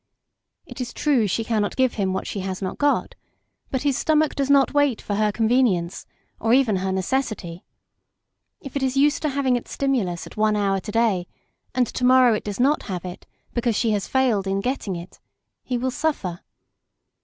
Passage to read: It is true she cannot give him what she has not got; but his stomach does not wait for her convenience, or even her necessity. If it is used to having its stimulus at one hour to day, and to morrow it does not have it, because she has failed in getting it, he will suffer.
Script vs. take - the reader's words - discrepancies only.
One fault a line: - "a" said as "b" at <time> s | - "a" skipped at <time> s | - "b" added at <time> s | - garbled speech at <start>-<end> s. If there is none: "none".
none